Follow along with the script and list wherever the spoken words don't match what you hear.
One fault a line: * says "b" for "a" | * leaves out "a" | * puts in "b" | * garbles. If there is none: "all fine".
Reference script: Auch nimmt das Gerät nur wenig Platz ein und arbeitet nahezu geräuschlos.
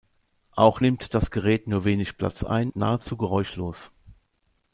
* leaves out "und arbeitet"